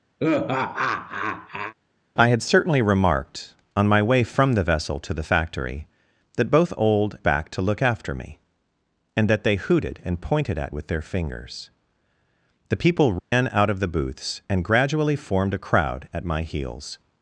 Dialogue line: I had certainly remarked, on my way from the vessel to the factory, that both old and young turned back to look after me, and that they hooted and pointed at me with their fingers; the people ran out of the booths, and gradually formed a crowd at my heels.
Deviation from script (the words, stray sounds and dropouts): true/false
true